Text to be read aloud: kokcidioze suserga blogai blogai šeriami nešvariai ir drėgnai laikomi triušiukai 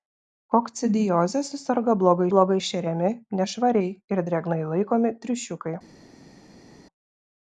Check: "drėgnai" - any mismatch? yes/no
no